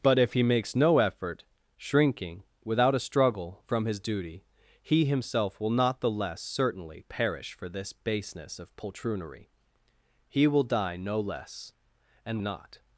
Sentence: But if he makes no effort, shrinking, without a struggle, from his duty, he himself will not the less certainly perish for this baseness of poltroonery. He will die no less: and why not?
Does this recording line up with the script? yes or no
no